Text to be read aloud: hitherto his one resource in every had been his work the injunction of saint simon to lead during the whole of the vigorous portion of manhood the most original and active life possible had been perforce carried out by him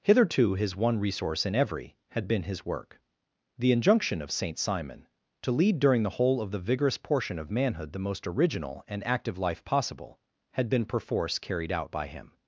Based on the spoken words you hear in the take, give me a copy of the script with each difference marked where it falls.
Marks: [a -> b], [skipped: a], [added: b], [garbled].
hitherto his one resource in every had been his work the injunction of saint simon to lead during the whole of the vigorous portion of manhood the most original and active life possible had been perforce carried out by him